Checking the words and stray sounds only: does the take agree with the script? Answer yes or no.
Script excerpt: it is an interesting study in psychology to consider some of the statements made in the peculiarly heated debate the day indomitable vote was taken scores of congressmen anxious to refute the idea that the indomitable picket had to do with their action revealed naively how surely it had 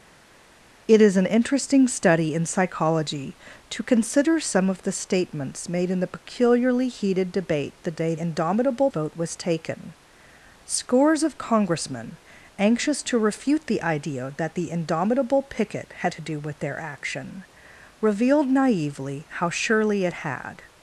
yes